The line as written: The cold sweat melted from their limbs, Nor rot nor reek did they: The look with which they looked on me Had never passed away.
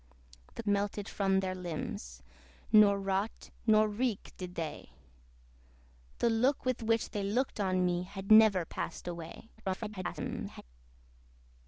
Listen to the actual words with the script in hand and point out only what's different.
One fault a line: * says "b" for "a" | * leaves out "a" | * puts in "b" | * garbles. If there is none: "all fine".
* leaves out "cold sweat"
* garbles